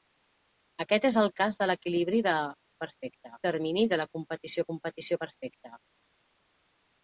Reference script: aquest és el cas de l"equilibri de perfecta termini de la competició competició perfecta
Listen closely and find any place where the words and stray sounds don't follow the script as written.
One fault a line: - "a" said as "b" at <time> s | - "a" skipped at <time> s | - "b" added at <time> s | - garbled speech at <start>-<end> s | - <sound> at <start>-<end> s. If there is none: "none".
none